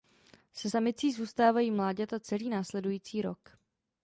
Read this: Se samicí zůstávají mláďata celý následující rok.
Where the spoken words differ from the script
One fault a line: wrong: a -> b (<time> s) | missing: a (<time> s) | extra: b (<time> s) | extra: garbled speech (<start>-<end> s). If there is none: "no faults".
no faults